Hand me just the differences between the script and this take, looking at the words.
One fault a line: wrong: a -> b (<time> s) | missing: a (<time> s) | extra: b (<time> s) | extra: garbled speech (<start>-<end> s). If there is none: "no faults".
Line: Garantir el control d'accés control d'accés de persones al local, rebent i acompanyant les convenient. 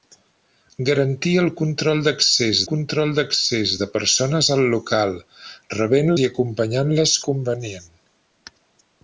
no faults